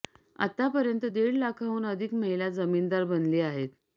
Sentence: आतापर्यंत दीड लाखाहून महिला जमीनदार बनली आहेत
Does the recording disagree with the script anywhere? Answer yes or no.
yes